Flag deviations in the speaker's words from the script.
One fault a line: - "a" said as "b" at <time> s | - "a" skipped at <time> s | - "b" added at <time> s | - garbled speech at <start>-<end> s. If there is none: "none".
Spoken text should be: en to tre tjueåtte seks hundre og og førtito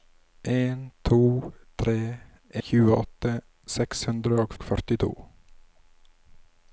none